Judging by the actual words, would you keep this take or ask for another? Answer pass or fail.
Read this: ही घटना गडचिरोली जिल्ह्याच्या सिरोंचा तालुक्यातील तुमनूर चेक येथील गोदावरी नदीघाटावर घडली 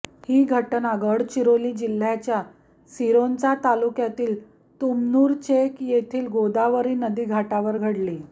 pass